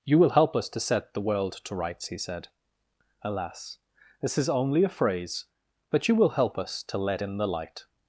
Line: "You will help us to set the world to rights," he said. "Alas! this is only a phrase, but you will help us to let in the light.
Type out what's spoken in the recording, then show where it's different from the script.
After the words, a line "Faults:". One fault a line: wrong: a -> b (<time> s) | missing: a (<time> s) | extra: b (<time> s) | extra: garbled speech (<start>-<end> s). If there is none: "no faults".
"You will help us to set the world to rights," he said. "Alas! this is only a phrase, but you will help us to let in the light.
Faults:
no faults